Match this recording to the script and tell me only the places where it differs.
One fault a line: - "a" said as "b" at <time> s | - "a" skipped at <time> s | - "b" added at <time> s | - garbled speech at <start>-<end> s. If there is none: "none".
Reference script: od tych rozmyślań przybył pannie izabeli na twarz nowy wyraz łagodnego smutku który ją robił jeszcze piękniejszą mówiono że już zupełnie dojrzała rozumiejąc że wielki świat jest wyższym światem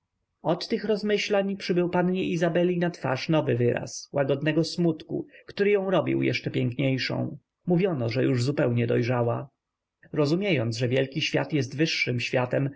none